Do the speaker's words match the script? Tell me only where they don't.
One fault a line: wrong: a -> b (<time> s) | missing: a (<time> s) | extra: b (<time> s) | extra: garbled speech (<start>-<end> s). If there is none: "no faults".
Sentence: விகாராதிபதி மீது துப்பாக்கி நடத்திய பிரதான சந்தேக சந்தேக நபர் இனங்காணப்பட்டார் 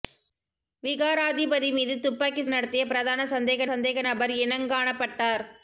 no faults